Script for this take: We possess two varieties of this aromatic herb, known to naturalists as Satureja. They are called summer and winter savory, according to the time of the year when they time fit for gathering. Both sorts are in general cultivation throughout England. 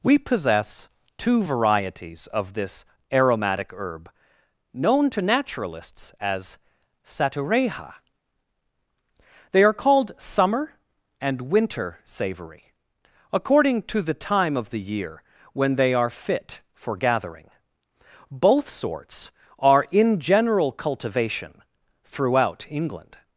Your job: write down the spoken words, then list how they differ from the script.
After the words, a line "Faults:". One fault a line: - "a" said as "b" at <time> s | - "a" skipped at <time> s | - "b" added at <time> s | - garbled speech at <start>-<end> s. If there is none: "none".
We possess two varieties of this aromatic herb, known to naturalists as Satureja. They are called summer and winter savory, according to the time of the year when they are fit for gathering. Both sorts are in general cultivation throughout England.
Faults:
- "time" said as "are" at 16.0 s